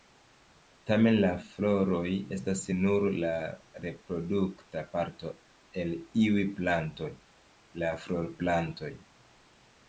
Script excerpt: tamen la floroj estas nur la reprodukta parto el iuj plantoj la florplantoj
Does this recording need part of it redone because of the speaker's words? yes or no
no